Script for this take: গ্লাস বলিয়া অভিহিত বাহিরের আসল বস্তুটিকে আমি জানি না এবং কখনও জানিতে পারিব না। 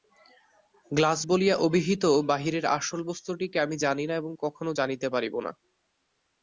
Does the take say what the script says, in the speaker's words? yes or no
yes